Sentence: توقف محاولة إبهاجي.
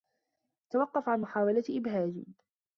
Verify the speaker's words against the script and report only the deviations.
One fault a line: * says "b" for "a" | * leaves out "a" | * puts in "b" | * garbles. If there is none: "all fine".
* puts in "عن"